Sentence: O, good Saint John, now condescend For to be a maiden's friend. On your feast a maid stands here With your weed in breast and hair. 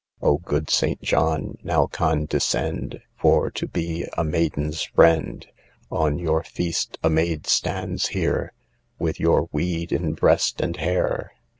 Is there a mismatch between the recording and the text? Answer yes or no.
no